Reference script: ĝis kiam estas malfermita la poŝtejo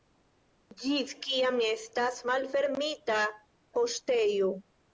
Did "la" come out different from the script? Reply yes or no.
yes